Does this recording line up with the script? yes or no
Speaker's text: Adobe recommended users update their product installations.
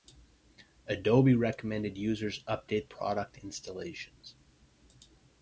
no